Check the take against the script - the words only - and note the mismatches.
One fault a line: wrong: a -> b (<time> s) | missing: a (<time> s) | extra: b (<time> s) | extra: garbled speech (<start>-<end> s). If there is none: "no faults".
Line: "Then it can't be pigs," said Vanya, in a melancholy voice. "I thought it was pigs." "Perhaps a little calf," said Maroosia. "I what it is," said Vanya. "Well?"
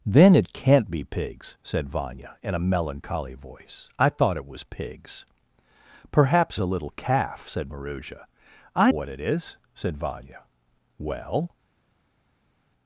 no faults